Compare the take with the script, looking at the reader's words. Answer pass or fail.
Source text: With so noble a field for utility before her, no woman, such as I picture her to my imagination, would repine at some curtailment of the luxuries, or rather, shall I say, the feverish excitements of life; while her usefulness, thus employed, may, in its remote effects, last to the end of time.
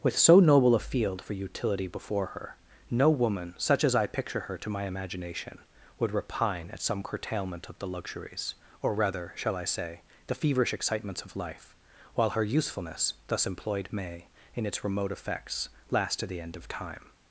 pass